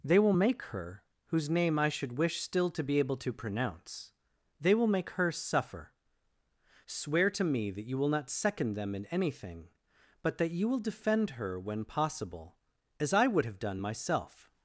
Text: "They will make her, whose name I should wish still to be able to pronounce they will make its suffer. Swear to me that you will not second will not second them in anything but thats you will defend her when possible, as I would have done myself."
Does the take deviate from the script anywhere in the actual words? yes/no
yes